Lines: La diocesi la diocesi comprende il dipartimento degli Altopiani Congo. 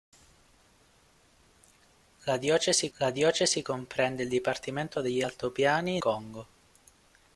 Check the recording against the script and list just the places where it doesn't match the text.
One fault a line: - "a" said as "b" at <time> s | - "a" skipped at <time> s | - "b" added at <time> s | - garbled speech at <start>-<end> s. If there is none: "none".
none